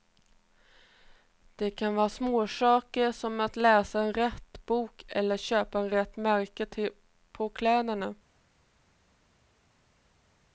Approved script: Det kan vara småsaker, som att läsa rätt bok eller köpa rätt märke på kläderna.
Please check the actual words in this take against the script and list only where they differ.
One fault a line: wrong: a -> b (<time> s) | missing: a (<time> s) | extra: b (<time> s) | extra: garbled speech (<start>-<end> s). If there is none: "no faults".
no faults